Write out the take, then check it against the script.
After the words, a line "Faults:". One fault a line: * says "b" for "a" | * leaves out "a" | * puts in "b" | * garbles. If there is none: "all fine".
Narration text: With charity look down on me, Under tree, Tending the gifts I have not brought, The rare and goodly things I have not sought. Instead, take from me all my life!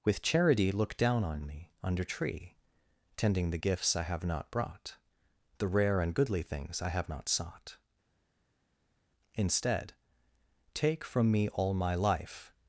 With charity look down on me, Under tree, Tending the gifts I have not brought, The rare and goodly things I have not sought. Instead, take from me all my life!
Faults:
all fine